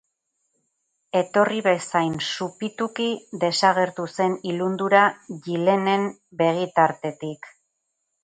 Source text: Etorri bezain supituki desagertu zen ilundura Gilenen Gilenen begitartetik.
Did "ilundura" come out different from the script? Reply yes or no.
no